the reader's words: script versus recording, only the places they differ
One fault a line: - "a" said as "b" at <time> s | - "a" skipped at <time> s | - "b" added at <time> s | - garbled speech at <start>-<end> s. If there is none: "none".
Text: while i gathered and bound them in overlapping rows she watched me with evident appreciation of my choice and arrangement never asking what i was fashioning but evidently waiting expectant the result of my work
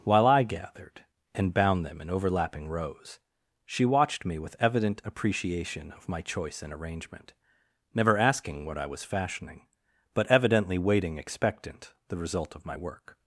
none